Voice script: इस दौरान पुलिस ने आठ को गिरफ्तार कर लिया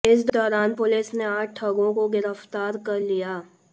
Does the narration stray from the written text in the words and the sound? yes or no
yes